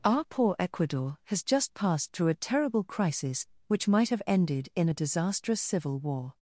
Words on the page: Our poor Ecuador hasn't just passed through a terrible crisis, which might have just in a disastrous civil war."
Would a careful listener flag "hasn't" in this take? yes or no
yes